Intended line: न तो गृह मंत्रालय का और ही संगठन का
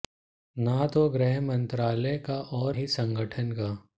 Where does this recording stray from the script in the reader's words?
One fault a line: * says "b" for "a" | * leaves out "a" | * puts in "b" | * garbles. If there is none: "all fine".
all fine